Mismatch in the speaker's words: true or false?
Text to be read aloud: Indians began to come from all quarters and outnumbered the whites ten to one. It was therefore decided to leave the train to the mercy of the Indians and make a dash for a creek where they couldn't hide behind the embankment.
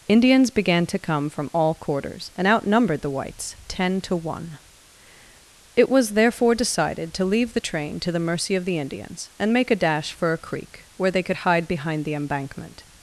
true